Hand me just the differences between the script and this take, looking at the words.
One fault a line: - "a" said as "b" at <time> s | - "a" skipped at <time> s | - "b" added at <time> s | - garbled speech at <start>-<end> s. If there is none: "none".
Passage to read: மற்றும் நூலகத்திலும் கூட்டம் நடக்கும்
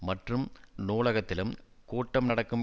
none